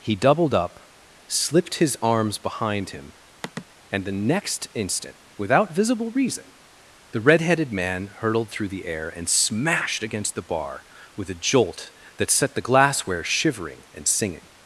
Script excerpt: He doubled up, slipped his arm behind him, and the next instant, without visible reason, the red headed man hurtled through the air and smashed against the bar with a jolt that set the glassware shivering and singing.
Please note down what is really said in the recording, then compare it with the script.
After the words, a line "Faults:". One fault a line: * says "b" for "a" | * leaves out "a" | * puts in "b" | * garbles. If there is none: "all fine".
He doubled up, slipped his arms behind him, and the next instant, without visible reason, the red headed man hurtled through the air and smashed against the bar with a jolt that set the glassware shivering and singing.
Faults:
* says "arms" for "arm"